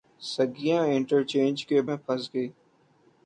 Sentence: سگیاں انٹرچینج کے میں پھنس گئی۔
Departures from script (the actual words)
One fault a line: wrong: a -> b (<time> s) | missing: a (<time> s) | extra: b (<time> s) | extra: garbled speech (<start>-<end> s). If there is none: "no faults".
no faults